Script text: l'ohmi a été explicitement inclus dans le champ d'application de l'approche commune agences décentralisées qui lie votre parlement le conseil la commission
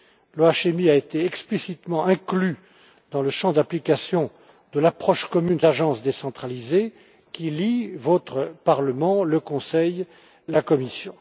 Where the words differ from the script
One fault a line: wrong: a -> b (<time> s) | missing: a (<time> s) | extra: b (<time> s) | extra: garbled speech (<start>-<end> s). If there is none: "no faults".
no faults